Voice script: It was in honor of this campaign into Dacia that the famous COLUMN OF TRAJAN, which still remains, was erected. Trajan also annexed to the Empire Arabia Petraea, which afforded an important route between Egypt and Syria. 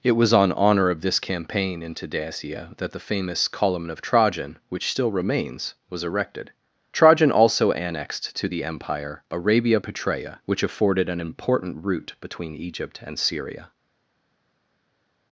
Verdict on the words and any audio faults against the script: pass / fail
fail